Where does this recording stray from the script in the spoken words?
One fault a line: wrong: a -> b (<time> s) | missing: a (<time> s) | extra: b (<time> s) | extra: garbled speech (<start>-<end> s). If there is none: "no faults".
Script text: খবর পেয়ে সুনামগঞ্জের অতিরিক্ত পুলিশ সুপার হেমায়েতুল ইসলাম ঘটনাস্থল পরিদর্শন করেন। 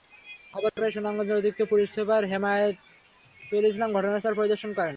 no faults